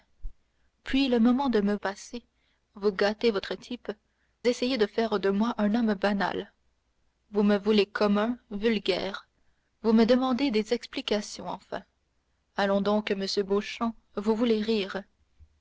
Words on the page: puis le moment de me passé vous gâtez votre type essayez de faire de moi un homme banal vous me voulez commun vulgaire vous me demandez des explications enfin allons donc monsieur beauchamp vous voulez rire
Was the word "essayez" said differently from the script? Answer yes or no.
no